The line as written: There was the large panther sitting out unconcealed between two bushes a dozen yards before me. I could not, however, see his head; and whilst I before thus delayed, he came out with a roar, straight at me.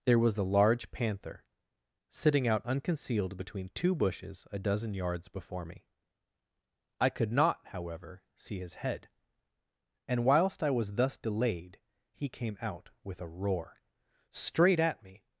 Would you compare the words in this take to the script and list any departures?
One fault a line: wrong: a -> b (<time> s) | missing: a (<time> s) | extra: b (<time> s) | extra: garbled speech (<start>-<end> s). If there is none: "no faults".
wrong: before -> was (10.7 s)